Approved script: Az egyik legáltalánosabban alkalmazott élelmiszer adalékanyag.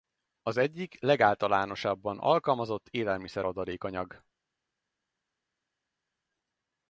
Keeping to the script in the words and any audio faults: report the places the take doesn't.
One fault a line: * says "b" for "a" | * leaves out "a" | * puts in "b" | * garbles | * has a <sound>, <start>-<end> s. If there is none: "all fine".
all fine